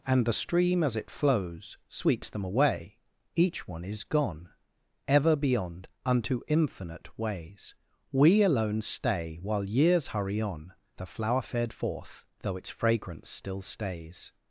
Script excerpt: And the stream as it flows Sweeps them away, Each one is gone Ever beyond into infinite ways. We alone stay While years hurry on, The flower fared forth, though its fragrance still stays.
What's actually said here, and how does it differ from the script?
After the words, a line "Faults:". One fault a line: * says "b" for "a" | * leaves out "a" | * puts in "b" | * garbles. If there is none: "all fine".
And the stream as it flows Sweeps them away, Each one is gone Ever beyond unto infinite ways. We alone stay While years hurry on, The flower fared forth, though its fragrance still stays.
Faults:
* says "unto" for "into"